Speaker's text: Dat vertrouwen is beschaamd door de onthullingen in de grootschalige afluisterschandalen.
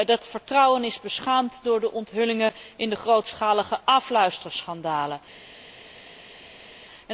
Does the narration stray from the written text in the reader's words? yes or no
no